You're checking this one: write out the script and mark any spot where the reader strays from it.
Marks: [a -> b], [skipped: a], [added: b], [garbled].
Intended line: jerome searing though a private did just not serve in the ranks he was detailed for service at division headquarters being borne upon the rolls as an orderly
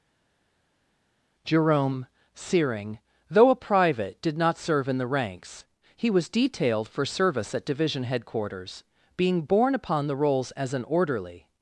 jerome searing though a private did [skipped: just] not serve in the ranks he was detailed for service at division headquarters being borne upon the rolls as an orderly